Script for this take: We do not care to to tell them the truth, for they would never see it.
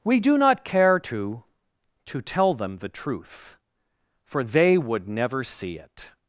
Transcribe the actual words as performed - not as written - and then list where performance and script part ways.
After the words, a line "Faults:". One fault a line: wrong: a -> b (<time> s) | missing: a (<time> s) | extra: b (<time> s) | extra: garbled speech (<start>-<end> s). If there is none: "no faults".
We do not care to to tell them the truth, for they would never see it.
Faults:
no faults